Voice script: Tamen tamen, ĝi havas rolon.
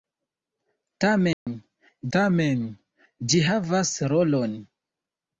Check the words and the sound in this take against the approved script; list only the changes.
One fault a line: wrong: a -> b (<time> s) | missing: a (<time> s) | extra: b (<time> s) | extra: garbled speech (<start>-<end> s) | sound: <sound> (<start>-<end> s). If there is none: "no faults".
sound: dropout (1.3-1.5 s)